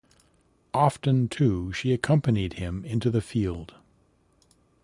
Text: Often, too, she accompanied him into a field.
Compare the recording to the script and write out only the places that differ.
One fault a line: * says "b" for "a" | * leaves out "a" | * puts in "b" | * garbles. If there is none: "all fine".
* says "the" for "a"